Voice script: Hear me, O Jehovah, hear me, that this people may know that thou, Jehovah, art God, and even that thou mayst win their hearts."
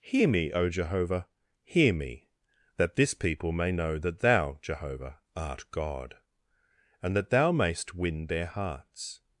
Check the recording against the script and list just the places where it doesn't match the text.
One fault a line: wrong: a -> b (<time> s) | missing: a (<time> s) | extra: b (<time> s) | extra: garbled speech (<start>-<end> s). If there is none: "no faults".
missing: even (7.2 s)